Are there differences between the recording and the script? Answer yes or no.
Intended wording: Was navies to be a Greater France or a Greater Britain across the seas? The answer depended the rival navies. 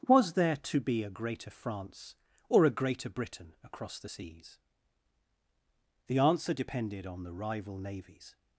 yes